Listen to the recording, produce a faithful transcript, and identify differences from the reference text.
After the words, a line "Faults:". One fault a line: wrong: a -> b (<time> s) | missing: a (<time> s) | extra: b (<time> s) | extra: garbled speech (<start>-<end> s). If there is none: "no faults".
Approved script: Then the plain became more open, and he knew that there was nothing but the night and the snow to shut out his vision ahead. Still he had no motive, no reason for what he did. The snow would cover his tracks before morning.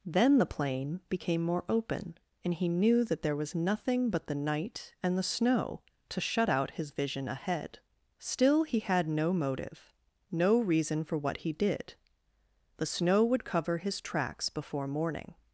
Then the plain became more open, and he knew that there was nothing but the night and the snow to shut out his vision ahead. Still he had no motive, no reason for what he did. The snow would cover his tracks before morning.
Faults:
no faults